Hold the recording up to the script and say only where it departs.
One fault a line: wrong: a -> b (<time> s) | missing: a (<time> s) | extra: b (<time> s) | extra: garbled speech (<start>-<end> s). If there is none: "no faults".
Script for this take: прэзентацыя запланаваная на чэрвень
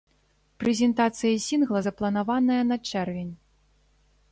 extra: сінгла (1.5 s)